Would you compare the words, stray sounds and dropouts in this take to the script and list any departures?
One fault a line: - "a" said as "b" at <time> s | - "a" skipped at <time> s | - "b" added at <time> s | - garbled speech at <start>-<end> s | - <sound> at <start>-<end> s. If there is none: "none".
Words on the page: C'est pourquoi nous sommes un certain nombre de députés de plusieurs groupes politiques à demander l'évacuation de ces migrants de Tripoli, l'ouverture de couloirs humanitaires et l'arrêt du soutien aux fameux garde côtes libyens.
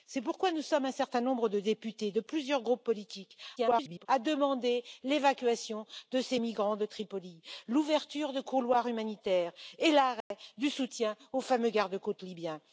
- garbled speech at 3.6-4.1 s
- dropout at 10.2-10.3 s